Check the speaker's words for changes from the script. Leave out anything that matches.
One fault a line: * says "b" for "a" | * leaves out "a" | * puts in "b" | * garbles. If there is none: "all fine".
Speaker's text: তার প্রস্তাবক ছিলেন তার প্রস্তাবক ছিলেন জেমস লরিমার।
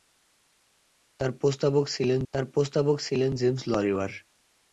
all fine